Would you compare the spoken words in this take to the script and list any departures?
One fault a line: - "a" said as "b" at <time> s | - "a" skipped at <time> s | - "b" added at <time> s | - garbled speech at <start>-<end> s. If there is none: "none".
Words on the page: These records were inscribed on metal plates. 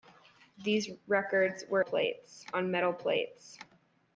- "inscribed" said as "plates" at 1.8 s